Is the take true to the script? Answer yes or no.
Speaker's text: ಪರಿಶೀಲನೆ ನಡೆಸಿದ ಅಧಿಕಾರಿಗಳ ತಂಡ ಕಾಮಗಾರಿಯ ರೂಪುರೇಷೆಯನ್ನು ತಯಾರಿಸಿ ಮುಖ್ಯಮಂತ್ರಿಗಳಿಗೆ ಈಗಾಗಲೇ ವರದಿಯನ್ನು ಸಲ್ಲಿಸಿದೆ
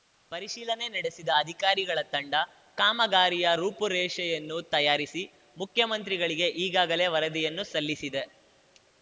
yes